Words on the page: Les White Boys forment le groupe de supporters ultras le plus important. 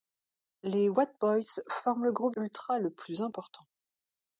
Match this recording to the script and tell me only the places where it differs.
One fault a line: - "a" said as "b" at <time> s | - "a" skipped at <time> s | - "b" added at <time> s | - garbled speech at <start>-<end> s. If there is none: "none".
- "de supporters" skipped at 2.4 s